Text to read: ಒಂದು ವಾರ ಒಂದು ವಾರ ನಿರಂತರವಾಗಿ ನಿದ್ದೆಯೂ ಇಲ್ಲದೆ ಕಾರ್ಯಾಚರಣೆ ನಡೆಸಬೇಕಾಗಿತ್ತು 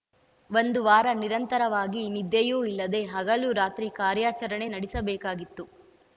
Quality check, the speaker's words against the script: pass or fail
fail